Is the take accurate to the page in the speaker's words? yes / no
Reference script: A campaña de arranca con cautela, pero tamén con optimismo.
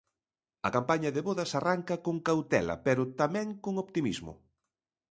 no